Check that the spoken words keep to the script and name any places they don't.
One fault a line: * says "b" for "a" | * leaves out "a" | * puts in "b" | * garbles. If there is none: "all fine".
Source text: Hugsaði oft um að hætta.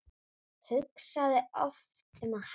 all fine